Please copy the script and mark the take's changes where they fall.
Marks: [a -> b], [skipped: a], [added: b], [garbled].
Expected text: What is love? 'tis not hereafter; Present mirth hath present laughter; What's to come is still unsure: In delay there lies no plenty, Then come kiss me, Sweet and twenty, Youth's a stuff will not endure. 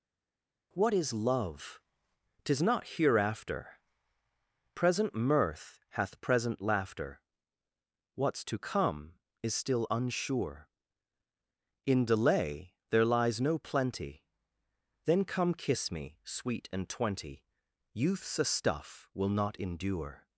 What is love? 'tis not hereafter; Present mirth hath present laughter; What's to come is still unsure: In delay there lies no plenty, Then come kiss me, Sweet and twenty, Youth's a stuff will not endure.